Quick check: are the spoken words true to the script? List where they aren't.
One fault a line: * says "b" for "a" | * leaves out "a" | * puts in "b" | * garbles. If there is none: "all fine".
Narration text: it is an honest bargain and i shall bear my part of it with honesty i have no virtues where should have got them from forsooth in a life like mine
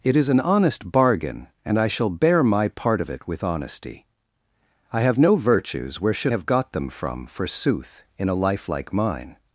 all fine